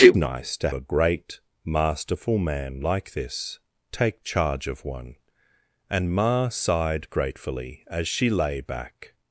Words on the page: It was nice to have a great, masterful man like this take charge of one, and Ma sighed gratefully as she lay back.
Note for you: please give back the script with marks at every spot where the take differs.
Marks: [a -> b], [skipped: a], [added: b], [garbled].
It [skipped: was] nice to [skipped: have] a great, masterful man like this take charge of one, and Ma sighed gratefully as she lay back.